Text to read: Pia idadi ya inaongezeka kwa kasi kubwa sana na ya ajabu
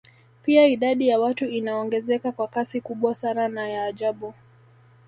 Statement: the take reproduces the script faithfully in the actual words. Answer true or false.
false